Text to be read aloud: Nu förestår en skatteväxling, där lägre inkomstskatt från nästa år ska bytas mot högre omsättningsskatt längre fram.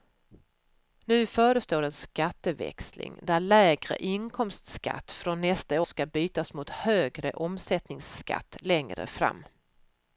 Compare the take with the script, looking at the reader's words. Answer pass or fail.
fail